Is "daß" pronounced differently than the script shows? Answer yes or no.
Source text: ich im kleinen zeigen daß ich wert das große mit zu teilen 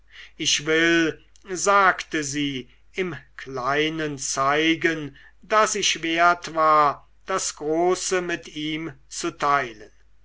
no